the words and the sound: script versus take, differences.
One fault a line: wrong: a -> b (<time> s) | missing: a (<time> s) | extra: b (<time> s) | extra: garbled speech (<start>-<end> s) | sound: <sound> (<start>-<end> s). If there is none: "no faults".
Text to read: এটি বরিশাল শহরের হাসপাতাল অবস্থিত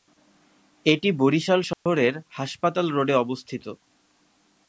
sound: dropout (1.7-1.9 s)
extra: রোডে (2.9 s)